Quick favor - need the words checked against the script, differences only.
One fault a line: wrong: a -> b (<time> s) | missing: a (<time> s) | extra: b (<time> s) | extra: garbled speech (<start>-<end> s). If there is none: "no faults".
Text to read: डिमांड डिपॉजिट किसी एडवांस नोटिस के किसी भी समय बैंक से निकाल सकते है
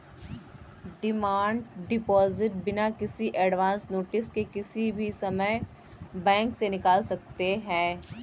extra: बिना (2.6 s)